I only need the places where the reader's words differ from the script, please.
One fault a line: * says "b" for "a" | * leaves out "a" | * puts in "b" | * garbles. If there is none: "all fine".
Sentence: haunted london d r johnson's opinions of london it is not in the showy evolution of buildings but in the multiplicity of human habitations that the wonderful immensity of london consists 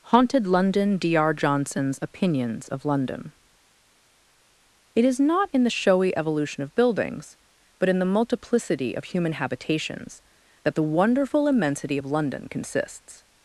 all fine